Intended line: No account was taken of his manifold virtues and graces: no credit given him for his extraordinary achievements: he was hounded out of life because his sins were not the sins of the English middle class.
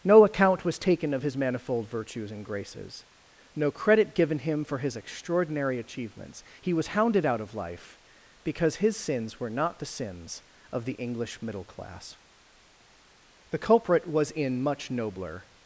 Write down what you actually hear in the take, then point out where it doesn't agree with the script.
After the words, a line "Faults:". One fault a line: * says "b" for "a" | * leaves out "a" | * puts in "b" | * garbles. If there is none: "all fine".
No account was taken of his manifold virtues and graces: no credit given him for his extraordinary achievements: he was hounded out of life because his sins were not the sins of the English middle class. The culprit was in much nobler
Faults:
* puts in "The culprit was in much nobler"